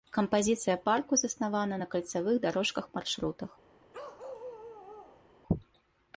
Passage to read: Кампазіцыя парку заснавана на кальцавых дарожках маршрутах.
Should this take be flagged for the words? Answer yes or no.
no